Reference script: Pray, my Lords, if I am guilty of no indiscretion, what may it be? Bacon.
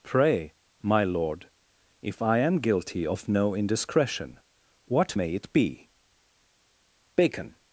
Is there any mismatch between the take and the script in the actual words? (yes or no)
yes